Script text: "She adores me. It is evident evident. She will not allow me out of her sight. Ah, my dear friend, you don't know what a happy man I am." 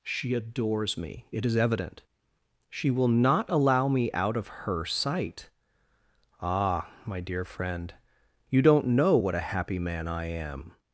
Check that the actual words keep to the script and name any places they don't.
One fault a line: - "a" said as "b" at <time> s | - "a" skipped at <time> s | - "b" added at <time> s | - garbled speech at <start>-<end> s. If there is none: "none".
- "evident" skipped at 2.0 s